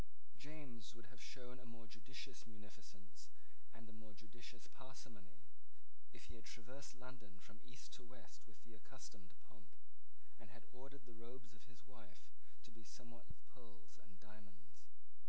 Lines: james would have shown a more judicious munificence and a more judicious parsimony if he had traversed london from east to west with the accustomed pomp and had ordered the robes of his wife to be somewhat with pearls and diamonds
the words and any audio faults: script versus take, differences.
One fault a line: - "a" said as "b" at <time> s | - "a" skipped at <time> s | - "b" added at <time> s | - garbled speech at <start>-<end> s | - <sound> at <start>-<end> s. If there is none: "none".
none